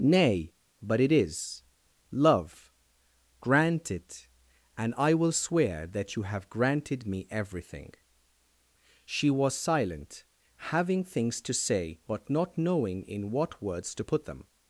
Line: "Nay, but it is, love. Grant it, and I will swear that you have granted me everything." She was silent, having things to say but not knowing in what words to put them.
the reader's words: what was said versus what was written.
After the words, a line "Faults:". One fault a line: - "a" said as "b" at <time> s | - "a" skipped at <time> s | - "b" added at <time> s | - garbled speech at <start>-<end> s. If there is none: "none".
"Nay, but it is, love. Grant it, and I will swear that you have granted me everything." She was silent, having things to say but not knowing in what words to put them.
Faults:
none